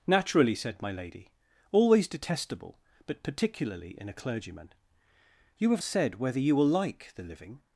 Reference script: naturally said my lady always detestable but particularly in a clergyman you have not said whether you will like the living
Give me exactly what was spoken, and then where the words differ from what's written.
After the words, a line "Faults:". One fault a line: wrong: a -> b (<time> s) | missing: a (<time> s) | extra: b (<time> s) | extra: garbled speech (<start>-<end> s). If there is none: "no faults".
naturally said my lady always detestable but particularly in a clergyman you have said whether you will like the living
Faults:
missing: not (5.8 s)